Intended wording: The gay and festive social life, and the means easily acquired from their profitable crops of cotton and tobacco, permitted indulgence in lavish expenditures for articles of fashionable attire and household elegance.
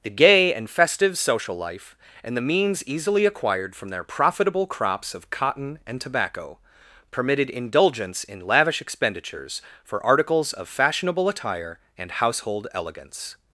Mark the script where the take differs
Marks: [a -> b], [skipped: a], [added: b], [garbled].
The gay and festive social life, and the means easily acquired from their profitable crops of cotton and tobacco, permitted indulgence in lavish expenditures for articles of fashionable attire and household elegance.